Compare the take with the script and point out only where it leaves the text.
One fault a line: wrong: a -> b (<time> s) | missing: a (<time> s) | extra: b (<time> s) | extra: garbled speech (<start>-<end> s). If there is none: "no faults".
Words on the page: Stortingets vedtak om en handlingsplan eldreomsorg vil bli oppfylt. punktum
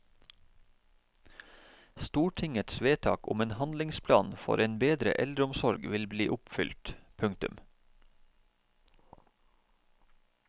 extra: for en bedre (4.5 s)